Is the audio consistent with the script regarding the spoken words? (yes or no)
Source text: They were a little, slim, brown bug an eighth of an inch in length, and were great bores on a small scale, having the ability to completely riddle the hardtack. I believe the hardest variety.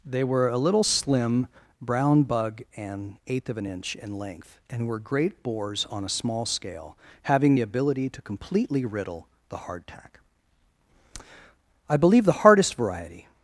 yes